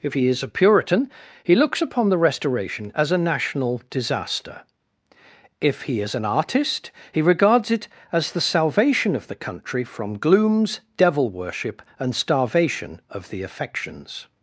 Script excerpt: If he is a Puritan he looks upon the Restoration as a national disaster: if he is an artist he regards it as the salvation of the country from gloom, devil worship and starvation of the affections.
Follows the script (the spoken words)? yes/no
no